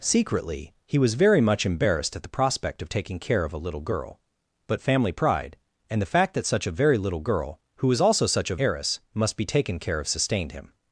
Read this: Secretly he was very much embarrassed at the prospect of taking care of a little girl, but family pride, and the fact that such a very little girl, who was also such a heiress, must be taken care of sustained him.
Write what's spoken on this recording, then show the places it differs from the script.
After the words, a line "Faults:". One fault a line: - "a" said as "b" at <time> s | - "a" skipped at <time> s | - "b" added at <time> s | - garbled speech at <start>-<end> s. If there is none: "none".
Secretly he was very much embarrassed at the prospect of taking care of a little girl, but family pride, and the fact that such a very little girl, who was also such a heiress, must be taken care of sustained him.
Faults:
none